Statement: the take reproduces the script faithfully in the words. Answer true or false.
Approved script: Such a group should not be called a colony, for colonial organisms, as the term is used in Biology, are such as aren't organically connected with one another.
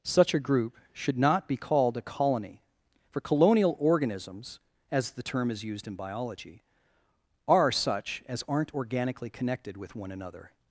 true